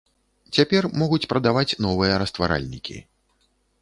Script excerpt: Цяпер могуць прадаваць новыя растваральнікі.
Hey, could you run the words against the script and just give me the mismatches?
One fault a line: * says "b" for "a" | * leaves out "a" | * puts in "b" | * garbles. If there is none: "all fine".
all fine